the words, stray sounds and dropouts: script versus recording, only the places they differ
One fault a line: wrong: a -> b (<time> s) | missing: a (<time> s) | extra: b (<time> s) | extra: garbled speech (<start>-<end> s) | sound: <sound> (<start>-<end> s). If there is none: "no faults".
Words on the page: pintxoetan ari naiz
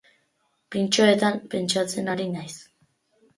extra: pentsatzen (1.5 s)